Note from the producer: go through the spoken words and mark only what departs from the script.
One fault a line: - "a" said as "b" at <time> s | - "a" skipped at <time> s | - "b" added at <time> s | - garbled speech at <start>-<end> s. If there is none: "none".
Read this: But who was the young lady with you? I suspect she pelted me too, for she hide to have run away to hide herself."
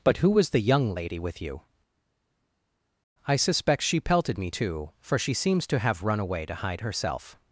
- "hide" said as "seems" at 5.3 s